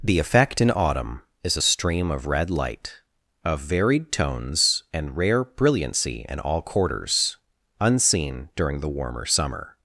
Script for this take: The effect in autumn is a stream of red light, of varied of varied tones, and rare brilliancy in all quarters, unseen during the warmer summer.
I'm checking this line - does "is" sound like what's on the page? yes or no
yes